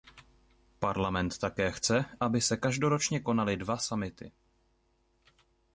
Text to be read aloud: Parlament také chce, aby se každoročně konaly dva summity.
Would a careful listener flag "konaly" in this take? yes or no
no